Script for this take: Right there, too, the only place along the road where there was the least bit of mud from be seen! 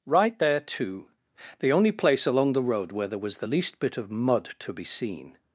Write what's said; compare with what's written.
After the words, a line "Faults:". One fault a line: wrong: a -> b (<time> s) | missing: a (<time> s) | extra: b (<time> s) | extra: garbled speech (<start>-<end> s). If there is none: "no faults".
Right there, too, the only place along the road where there was the least bit of mud to be seen!
Faults:
wrong: from -> to (4.6 s)